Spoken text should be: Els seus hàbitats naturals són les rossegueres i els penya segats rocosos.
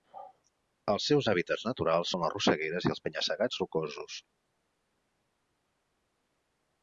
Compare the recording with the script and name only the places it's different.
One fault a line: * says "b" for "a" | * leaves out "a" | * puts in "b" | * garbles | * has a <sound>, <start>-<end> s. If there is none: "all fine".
all fine